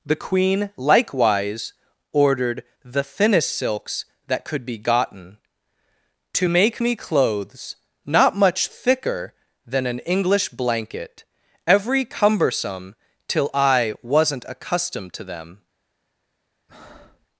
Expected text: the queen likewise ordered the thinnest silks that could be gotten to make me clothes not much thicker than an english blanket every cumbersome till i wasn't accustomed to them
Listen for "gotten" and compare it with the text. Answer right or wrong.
right